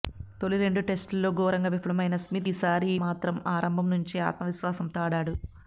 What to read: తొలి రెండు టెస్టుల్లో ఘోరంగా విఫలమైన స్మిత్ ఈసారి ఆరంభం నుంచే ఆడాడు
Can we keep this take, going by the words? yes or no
no